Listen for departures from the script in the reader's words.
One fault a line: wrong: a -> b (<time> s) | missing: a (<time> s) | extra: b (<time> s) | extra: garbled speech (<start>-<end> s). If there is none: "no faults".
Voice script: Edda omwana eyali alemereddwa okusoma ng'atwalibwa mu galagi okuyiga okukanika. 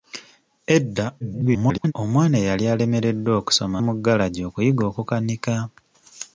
extra: garbled speech (1.2-1.9 s)
missing: ng'atwalibwa (3.8 s)